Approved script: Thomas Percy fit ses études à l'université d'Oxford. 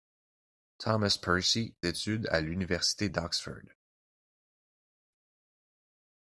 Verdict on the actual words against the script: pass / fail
fail